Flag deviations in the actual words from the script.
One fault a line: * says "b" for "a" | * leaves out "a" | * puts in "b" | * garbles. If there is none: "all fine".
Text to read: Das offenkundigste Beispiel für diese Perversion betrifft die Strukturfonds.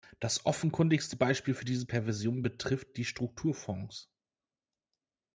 all fine